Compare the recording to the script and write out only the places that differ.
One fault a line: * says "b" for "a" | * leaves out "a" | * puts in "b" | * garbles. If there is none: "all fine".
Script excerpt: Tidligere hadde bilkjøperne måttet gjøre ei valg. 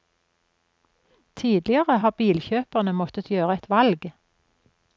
* says "har" for "hadde"
* says "et" for "ei"